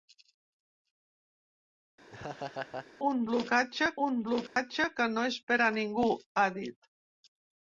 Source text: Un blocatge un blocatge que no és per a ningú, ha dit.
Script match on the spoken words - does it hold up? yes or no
yes